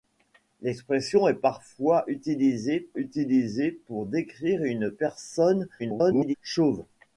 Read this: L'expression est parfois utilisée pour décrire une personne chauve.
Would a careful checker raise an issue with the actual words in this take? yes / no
yes